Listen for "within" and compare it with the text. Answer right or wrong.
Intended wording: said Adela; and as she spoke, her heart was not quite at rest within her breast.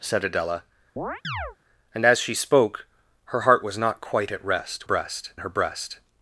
wrong